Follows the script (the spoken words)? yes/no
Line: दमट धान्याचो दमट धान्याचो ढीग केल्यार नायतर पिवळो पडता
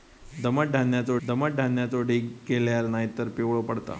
yes